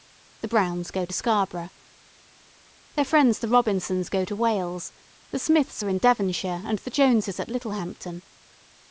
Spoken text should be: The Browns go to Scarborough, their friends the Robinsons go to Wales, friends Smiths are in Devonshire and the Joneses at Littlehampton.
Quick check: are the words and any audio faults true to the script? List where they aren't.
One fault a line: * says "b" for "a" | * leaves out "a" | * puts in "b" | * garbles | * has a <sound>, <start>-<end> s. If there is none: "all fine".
* says "the" for "friends"